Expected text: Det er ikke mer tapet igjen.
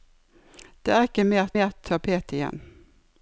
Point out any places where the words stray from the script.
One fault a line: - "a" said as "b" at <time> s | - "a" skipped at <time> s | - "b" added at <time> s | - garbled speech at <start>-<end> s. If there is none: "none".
- "mer" added at 1.6 s